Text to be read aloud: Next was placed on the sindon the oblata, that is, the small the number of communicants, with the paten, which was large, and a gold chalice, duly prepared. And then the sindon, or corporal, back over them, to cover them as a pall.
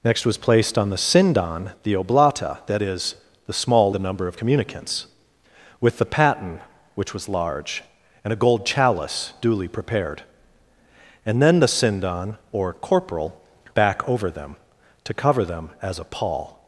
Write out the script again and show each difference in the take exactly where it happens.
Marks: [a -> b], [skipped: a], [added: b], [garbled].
Next was placed on the sindon the oblata, that is, the small the number of communicants, with the paten, which was large, and a gold chalice, duly prepared. And then the sindon, or corporal, back over them, to cover them as a pall.